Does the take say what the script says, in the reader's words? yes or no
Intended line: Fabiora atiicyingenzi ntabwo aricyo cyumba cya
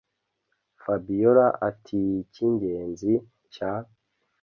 no